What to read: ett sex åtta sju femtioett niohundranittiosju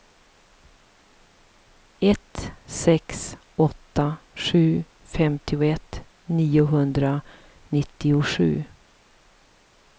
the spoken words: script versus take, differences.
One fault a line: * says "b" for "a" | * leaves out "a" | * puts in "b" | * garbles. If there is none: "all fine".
all fine